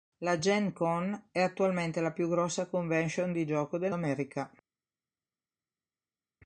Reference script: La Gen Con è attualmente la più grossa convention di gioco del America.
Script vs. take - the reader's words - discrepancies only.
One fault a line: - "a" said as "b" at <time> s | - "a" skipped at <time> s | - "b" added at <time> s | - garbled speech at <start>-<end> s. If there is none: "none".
none